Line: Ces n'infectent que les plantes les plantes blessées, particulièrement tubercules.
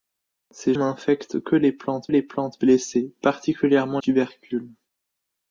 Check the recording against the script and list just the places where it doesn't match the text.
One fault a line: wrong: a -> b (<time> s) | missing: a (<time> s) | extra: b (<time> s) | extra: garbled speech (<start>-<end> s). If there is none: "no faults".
no faults